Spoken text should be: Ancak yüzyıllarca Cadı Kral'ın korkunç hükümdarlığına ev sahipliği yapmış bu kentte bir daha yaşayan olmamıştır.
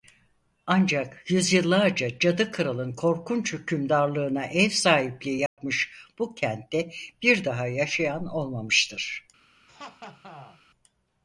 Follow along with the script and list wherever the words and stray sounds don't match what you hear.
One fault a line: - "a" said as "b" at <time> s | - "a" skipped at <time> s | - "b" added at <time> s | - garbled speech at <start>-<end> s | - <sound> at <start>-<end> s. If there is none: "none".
- dropout at 5.5-5.6 s
- laugh at 9.7-10.6 s